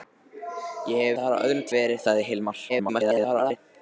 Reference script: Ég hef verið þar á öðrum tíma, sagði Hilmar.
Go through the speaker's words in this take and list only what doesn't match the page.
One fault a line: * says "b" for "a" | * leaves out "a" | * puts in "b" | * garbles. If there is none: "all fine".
* leaves out "verið"
* says "verið" for "tíma"
* garbles